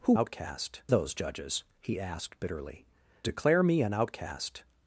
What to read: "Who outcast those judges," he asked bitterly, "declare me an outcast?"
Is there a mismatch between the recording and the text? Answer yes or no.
no